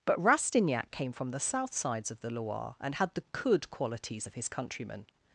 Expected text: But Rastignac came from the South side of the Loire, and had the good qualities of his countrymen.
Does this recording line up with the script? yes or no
no